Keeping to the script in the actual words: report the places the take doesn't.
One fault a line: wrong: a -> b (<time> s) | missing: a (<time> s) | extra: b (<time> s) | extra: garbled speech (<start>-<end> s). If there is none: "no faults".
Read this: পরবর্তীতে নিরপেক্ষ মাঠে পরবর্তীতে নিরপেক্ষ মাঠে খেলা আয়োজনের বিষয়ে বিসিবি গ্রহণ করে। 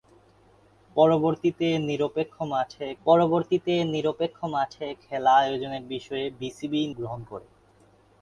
no faults